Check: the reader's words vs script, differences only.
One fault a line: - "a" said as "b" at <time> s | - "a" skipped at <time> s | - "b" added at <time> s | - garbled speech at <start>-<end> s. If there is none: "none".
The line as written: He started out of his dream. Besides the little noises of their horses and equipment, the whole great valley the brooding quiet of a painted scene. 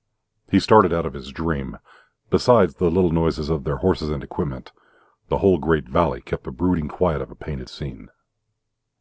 - "kept" added at 6.2 s